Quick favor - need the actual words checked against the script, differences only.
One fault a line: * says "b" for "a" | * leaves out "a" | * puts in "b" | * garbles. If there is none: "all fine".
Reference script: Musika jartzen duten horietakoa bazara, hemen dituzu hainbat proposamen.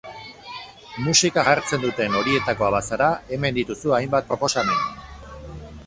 all fine